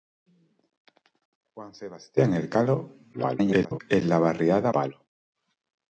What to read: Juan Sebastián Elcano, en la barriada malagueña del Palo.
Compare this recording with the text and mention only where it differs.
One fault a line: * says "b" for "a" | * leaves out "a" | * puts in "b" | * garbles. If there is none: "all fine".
* garbles
* leaves out "malagueña del"